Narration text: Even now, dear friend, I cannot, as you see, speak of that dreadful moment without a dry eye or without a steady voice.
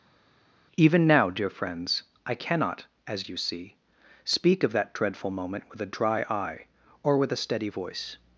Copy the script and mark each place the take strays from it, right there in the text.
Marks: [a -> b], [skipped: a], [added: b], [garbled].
Even now, dear [friend, -> friends] I cannot, as you see, speak of that dreadful moment [without -> with] a dry eye or [without -> with] a steady voice.